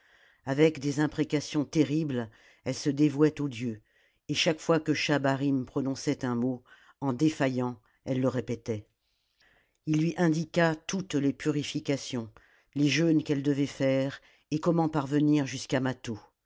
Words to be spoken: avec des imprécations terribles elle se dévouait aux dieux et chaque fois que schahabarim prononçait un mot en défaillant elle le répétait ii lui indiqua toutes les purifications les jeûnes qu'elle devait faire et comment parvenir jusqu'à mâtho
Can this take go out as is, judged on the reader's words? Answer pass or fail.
pass